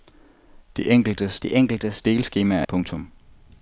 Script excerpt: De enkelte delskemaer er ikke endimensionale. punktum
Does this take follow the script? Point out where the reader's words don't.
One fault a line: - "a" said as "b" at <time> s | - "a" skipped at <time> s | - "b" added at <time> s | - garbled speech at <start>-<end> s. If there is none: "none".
- "de enkelte" added at 1.4 s
- "ikke endimensionale" skipped at 2.6 s